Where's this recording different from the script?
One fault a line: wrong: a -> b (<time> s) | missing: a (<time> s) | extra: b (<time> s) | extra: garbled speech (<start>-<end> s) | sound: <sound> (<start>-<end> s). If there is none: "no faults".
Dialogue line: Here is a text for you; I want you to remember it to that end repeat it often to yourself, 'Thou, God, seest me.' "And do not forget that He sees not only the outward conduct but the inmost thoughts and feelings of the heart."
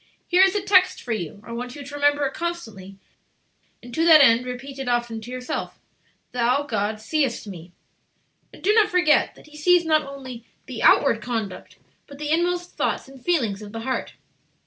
extra: constantly and (2.3 s)